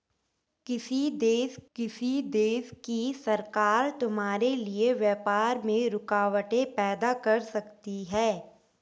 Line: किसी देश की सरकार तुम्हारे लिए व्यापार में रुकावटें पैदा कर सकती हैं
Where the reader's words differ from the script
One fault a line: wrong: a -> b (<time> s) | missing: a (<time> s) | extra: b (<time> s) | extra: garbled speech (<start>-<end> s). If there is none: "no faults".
extra: किसी देश (1.8 s)